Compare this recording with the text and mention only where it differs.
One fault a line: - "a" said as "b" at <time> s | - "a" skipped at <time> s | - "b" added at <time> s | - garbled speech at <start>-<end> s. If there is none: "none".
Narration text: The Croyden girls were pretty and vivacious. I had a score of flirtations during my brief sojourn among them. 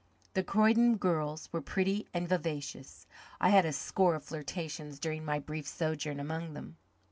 none